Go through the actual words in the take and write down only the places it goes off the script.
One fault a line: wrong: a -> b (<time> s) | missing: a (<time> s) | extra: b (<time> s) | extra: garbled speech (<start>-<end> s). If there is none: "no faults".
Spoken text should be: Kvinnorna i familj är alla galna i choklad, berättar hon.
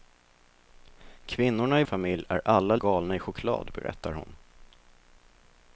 no faults